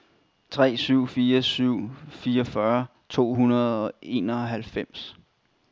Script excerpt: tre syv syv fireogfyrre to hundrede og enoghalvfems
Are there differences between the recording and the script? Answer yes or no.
yes